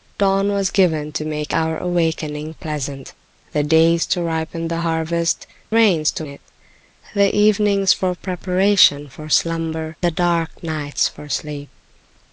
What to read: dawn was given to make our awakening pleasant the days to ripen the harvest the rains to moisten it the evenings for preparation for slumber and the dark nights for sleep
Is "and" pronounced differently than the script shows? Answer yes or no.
yes